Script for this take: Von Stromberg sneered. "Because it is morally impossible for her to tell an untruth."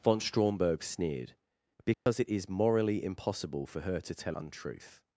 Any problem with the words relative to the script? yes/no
yes